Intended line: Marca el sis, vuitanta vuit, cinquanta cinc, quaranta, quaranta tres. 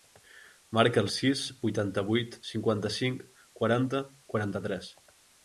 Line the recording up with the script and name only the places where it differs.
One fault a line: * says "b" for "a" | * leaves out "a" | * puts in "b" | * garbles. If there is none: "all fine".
all fine